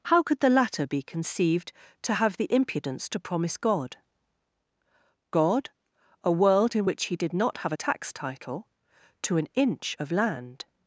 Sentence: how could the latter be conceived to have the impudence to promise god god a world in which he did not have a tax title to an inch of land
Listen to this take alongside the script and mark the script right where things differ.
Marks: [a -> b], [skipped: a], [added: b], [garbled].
how could the latter be conceived to have the impudence to promise god god a world in which he did not have a tax title to an inch of land